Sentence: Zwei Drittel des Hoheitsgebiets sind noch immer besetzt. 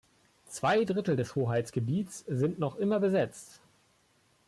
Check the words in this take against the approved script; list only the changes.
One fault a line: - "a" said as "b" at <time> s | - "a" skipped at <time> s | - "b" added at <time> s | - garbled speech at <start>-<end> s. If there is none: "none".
none